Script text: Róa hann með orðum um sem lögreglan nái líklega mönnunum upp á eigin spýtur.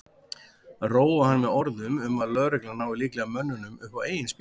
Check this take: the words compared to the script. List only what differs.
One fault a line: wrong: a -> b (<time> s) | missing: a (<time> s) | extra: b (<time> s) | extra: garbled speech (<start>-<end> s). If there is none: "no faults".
wrong: sem -> að (2.2 s)